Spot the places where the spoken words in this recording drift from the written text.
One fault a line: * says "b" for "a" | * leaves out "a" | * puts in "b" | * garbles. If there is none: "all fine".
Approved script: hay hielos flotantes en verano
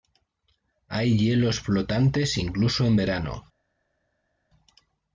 * puts in "incluso"